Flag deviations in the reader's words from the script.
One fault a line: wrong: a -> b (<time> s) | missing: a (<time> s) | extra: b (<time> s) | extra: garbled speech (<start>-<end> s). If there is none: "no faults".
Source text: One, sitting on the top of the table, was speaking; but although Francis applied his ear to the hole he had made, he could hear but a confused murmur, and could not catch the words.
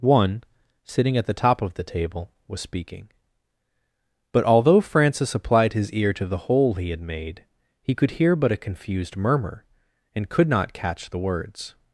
wrong: on -> at (1.1 s)